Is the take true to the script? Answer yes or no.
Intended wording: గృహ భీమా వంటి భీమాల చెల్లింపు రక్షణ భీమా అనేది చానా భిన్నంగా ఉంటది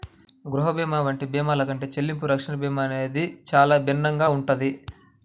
no